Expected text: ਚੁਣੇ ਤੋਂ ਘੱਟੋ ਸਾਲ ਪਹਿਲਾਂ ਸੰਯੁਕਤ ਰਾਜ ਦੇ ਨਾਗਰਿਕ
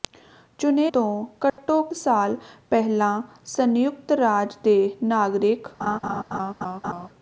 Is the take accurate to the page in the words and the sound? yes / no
no